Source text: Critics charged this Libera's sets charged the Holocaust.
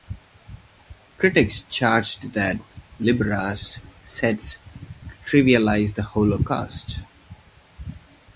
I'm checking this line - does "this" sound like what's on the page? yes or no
no